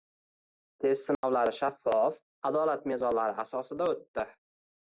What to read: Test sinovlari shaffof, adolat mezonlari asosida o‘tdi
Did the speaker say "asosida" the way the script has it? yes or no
yes